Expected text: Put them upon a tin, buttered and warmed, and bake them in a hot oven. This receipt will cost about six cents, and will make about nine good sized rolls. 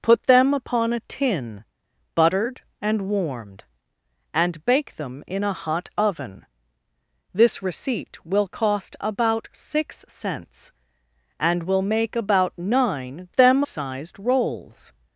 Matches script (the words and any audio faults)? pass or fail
fail